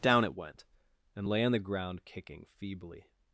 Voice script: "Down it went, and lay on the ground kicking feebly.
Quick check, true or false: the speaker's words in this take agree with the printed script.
true